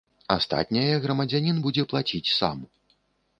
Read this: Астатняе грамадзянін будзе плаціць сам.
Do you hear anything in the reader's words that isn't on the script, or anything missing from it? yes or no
no